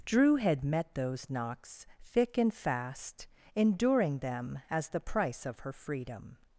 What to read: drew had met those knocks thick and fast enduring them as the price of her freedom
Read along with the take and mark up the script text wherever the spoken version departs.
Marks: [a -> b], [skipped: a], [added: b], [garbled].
drew had met those knocks thick and fast enduring them as the price of her freedom